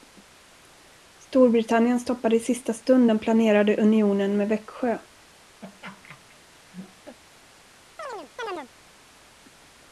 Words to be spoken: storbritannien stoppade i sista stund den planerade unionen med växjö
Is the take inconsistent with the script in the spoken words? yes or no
no